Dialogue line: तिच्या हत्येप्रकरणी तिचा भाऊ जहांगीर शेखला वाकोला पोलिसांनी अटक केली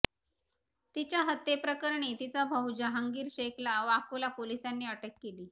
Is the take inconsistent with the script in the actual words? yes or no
no